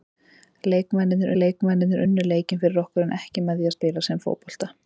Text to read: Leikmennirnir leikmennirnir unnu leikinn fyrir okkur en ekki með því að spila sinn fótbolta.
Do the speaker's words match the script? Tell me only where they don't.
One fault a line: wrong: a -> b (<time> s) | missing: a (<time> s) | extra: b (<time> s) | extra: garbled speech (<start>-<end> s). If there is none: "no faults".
no faults